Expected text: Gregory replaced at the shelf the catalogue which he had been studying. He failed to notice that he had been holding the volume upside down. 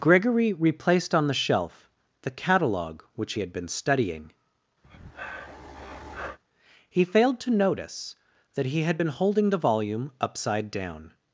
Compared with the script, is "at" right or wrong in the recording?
wrong